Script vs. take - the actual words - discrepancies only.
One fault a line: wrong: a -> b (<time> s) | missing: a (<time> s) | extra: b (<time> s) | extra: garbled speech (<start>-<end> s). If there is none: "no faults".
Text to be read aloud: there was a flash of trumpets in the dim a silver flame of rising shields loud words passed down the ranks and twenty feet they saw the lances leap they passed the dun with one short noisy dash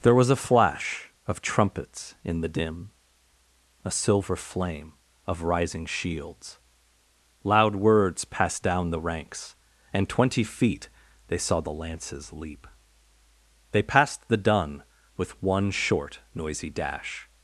no faults